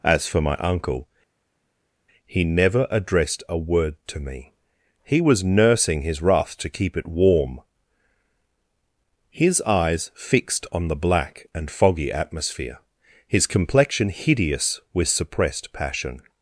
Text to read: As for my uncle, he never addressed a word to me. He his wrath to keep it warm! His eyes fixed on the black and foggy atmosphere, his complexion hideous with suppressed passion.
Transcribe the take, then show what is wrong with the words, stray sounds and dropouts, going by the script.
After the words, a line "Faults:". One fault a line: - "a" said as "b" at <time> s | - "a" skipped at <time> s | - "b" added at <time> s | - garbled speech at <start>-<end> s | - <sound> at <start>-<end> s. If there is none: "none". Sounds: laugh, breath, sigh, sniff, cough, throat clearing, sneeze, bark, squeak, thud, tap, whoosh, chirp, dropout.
As for my uncle, he never addressed a word to me. He was nursing his wrath to keep it warm! His eyes fixed on the black and foggy atmosphere, his complexion hideous with suppressed passion.
Faults:
- "was nursing" added at 5.2 s